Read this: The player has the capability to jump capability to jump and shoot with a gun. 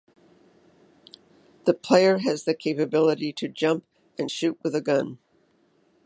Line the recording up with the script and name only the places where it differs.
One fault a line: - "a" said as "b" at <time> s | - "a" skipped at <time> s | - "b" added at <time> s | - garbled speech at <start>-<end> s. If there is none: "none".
- "capability to jump" skipped at 3.8 s